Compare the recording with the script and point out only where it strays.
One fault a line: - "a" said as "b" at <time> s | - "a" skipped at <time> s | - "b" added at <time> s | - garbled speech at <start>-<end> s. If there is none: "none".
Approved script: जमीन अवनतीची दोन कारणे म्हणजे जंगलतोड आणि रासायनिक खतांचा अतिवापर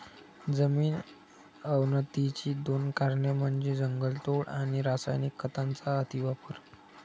none